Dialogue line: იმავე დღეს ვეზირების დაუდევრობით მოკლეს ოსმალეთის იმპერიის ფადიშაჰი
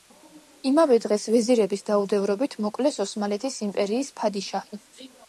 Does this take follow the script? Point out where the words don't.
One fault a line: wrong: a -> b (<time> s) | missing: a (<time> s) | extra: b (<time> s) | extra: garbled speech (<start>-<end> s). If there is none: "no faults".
no faults